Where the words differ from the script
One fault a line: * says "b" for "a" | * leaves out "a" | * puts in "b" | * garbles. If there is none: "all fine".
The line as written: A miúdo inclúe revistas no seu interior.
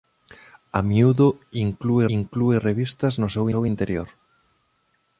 * puts in "inclúe"
* puts in "seu"